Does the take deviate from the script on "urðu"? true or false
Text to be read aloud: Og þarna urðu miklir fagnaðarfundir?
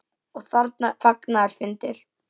true